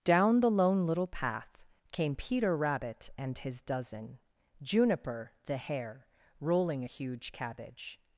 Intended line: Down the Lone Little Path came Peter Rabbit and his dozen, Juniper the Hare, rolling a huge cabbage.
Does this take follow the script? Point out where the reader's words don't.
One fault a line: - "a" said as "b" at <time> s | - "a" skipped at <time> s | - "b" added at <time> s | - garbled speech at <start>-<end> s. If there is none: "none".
none